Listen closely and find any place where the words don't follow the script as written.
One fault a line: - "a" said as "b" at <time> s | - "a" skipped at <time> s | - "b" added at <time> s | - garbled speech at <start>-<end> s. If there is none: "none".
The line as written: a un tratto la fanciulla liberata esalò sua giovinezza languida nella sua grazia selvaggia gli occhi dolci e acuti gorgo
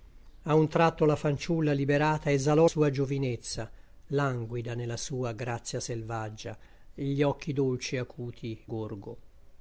none